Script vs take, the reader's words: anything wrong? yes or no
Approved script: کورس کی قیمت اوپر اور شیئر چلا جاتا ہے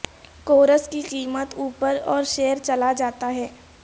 no